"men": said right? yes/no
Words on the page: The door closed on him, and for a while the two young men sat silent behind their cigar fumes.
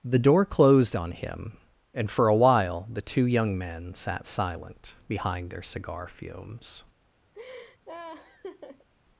yes